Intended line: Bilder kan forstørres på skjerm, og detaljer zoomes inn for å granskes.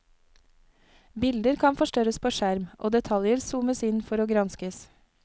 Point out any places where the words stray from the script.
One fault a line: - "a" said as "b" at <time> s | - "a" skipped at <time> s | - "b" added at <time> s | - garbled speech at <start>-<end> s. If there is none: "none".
none